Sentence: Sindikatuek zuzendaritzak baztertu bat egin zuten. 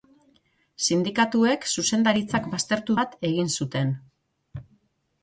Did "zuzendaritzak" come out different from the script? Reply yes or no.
no